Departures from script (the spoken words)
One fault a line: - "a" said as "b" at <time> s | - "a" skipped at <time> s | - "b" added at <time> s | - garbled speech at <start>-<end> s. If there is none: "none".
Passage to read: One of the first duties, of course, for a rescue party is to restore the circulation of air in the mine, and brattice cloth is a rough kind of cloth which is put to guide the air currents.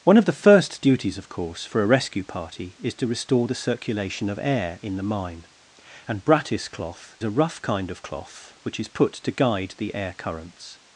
- "is" skipped at 7.2 s